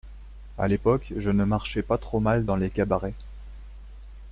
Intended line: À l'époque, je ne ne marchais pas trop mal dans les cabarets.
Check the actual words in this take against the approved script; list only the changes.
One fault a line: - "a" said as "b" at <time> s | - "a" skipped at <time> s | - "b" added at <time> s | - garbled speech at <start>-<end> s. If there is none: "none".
- "ne" skipped at 1.4 s